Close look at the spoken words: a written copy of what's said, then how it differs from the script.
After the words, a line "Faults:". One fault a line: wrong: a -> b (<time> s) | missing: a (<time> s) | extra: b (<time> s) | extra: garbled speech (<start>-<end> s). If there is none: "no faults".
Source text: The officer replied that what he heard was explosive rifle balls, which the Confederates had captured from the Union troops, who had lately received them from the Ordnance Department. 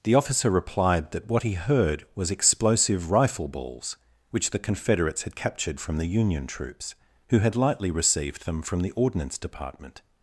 The officer replied that what he heard was explosive rifle balls, which the Confederates had captured from the Union troops, who had lightly received them from the Ordnance Department.
Faults:
wrong: lately -> lightly (7.5 s)